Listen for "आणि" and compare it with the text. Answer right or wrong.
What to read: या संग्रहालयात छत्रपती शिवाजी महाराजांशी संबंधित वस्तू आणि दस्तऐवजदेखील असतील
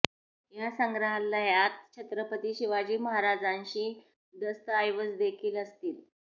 wrong